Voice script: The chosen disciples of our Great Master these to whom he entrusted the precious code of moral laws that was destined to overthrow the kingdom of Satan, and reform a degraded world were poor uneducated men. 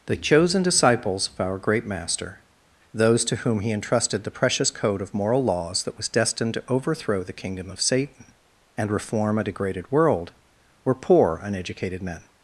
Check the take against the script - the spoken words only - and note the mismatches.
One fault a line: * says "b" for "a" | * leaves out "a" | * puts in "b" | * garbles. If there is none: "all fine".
* says "those" for "these"